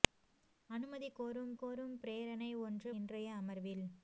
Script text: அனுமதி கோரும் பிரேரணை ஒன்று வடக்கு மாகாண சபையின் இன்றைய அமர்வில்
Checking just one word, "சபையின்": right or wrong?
wrong